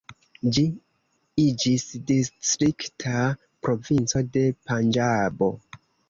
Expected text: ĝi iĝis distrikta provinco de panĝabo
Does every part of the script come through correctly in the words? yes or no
yes